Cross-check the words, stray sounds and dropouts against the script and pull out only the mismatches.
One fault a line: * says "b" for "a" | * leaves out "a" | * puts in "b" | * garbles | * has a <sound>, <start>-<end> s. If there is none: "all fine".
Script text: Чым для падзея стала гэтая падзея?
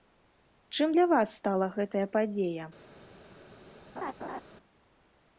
* says "вас" for "падзея"
* has a laugh, 4.0-4.4 s